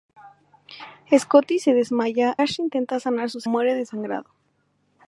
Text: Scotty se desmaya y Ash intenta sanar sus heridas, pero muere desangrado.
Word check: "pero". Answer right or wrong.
wrong